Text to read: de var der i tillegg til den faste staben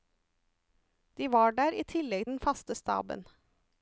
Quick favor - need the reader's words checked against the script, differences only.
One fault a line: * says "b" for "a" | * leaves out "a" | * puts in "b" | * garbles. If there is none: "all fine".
* leaves out "til"